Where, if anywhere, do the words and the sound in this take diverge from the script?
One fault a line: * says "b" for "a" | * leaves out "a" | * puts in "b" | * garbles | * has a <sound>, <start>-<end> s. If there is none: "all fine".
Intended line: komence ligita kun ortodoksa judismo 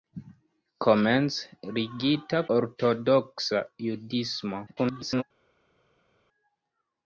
* leaves out "kun"
* garbles